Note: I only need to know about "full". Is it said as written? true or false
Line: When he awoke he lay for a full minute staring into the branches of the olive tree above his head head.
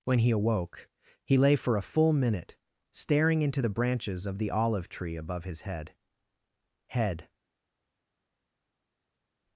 true